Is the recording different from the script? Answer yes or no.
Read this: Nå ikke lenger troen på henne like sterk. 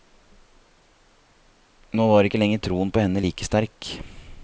yes